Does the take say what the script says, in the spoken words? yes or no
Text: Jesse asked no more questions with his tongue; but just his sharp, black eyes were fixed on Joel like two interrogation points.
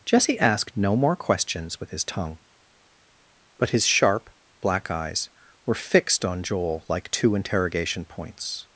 no